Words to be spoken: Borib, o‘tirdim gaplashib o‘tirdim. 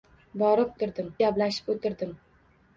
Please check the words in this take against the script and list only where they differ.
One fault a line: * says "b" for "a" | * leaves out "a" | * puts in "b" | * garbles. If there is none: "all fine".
all fine